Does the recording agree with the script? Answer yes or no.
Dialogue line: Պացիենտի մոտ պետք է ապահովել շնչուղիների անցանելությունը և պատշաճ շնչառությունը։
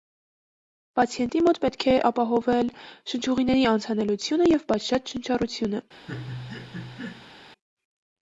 yes